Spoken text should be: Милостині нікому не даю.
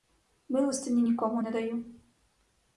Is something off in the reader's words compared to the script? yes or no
no